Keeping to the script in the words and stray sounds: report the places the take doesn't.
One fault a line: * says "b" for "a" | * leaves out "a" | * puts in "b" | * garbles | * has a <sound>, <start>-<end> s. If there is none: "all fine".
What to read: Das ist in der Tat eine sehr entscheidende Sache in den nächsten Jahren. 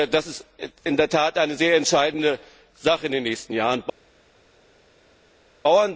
all fine